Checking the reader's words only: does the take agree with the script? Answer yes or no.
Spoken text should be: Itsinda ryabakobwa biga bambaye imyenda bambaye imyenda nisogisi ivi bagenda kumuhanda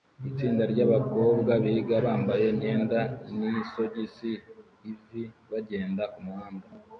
no